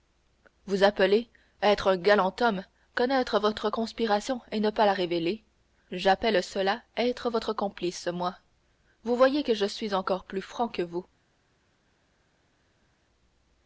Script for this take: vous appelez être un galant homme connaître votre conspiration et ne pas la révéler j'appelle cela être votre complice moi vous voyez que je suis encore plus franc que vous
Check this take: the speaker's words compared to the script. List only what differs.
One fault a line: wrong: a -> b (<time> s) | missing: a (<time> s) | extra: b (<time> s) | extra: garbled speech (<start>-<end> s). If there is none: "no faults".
no faults